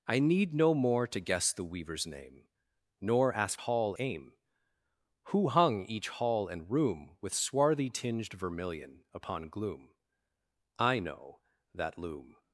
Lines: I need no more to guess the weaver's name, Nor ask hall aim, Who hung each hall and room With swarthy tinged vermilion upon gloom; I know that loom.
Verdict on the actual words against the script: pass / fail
pass